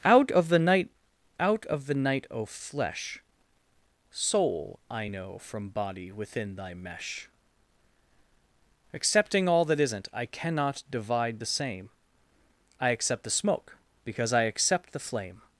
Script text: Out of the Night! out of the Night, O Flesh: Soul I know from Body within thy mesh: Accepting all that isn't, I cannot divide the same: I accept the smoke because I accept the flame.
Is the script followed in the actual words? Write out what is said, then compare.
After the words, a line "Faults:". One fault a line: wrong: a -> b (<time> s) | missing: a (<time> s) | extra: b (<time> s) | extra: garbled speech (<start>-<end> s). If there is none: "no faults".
Out of the Night! out of the Night, O Flesh: Soul I know from Body within thy mesh: Accepting all that isn't, I cannot divide the same: I accept the smoke because I accept the flame.
Faults:
no faults